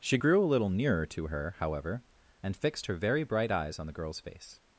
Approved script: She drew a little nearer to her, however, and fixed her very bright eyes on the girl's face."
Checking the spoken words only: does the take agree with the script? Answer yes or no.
no